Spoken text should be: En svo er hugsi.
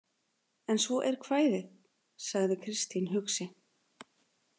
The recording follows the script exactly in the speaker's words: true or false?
false